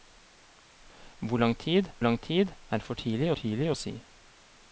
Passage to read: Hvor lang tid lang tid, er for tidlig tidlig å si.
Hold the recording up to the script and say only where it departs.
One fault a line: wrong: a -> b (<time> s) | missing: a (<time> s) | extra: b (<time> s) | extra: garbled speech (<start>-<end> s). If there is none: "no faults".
no faults